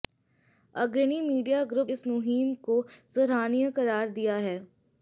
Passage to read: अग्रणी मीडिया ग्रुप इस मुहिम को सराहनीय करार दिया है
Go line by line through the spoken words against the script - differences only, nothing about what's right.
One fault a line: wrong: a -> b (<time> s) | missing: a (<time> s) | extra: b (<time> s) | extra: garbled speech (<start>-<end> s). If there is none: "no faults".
no faults